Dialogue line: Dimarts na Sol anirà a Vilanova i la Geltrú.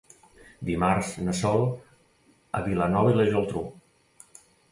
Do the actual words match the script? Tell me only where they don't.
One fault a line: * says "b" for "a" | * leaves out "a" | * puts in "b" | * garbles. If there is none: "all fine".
* leaves out "anirà"